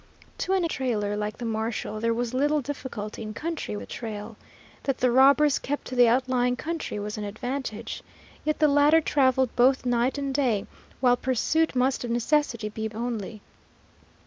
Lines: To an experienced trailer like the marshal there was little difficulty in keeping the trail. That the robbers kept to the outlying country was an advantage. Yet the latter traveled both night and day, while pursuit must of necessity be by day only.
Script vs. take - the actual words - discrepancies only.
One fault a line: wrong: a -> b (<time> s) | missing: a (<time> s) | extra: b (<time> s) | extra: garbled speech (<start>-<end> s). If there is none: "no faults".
missing: experienced (0.6 s)
wrong: keeping -> country (3.3 s)
missing: by day (12.9 s)